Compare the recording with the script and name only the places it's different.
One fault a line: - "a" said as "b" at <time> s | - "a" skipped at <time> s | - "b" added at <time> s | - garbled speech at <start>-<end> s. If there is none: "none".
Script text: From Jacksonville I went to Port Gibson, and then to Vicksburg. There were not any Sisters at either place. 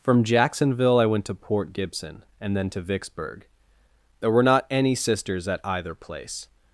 none